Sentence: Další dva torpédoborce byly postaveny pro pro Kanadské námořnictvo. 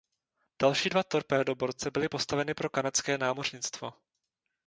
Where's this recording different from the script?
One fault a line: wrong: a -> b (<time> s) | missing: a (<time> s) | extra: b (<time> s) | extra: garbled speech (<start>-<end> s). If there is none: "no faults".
missing: pro (2.7 s)